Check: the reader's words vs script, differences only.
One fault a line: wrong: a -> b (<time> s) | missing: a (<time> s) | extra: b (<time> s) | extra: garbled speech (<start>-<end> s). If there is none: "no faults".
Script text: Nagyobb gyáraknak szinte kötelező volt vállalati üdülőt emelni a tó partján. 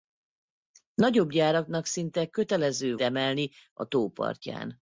missing: volt vállalati üdülőt (3.0 s)